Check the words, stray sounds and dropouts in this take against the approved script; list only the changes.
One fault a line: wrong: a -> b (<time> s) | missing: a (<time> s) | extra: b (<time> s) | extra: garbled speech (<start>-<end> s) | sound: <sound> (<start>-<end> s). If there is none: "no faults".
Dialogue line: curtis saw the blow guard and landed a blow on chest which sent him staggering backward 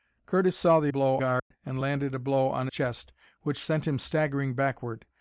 sound: dropout (1.4-1.5 s)